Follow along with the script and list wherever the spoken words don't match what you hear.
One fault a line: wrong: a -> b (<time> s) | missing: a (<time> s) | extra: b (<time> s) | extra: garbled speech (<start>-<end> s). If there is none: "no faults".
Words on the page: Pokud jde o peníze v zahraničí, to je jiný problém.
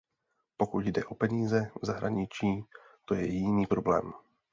no faults